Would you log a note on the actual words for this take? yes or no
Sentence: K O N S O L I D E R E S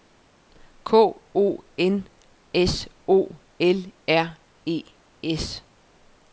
yes